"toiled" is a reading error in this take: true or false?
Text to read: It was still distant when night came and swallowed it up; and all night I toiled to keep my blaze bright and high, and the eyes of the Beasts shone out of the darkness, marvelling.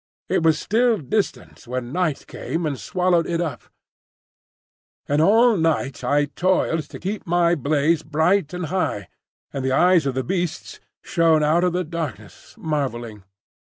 false